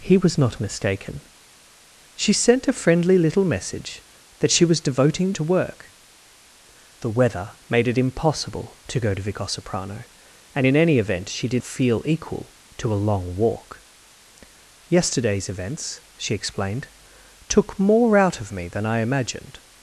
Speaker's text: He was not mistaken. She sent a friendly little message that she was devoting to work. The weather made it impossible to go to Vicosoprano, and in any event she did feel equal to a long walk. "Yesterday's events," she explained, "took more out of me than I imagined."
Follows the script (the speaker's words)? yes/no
yes